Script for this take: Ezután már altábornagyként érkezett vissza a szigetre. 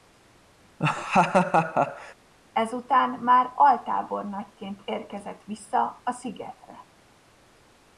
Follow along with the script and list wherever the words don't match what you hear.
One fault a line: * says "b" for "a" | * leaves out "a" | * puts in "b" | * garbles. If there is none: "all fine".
all fine